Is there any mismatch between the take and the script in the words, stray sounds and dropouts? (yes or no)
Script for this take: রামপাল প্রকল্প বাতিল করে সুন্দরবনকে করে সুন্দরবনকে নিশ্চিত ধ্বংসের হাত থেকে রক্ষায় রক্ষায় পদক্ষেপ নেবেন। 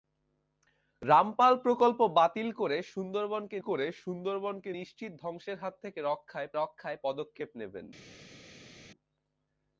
no